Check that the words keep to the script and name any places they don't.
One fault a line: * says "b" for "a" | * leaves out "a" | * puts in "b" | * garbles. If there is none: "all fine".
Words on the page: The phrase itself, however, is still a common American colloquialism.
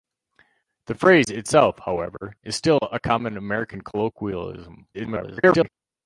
* garbles